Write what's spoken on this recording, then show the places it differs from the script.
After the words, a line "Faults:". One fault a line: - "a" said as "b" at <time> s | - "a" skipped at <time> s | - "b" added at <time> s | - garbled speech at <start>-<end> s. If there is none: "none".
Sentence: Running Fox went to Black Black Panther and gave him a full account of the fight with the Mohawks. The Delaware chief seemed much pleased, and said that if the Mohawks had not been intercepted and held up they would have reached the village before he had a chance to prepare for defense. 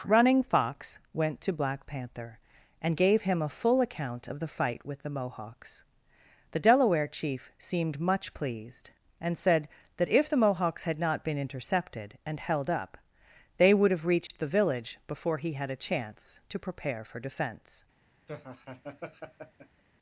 Running Fox went to Black Panther and gave him a full account of the fight with the Mohawks. The Delaware chief seemed much pleased, and said that if the Mohawks had not been intercepted and held up they would have reached the village before he had a chance to prepare for defense.
Faults:
- "Black" skipped at 1.9 s